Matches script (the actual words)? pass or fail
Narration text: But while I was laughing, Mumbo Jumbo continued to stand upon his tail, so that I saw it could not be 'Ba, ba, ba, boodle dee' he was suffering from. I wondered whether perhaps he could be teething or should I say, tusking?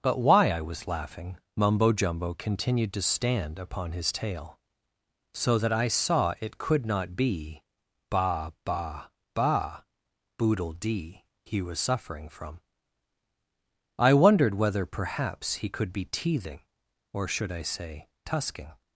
fail